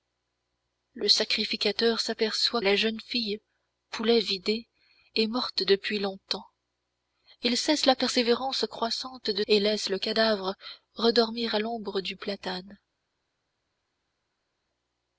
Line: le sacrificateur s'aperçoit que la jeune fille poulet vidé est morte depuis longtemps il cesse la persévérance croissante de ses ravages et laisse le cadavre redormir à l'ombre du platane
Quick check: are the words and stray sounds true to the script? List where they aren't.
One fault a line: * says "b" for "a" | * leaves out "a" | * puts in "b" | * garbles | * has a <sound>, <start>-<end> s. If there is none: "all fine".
* leaves out "que"
* leaves out "ses ravages"